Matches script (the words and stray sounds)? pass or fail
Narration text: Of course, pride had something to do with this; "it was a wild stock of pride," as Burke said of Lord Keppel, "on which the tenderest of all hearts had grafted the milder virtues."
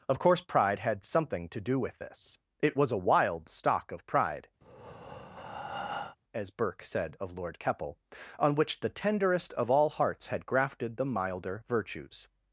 fail